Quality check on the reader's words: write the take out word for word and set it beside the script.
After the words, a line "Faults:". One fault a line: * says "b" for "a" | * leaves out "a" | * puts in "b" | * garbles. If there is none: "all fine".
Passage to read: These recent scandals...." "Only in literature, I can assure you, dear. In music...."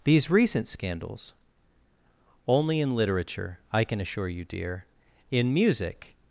These recent scandals...." "Only in literature, I can assure you, dear. In music...."
Faults:
all fine